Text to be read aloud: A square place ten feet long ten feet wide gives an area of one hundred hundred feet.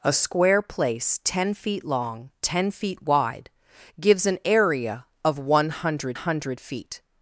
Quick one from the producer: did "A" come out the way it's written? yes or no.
yes